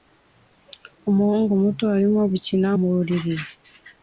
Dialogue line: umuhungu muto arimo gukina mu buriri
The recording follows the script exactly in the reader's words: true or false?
false